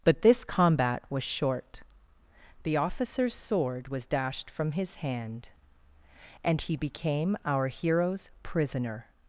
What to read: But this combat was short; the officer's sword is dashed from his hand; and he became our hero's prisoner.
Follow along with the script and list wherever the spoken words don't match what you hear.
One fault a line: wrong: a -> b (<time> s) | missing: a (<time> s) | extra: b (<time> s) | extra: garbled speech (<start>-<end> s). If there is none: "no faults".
wrong: is -> was (3.9 s)